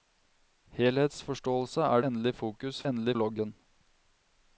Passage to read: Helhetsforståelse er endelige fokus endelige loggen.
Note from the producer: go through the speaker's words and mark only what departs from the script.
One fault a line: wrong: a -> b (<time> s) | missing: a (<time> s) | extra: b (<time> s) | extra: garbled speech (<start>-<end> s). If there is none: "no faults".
no faults